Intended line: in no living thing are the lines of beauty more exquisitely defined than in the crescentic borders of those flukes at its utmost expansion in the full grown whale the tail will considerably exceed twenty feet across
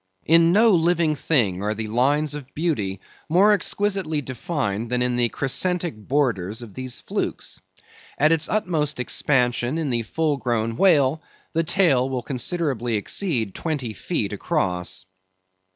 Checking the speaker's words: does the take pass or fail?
fail